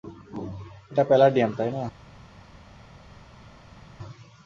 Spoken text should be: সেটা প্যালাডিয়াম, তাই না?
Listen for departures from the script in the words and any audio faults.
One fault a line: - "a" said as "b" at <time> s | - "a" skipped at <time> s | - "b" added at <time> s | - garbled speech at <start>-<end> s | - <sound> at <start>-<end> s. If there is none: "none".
- "সেটা" said as "এটা" at 0.9 s